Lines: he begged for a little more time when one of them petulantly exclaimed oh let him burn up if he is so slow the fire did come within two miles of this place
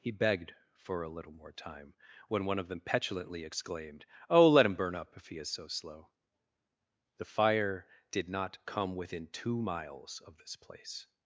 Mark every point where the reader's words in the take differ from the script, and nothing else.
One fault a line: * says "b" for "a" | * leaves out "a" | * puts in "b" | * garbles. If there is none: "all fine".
* puts in "not"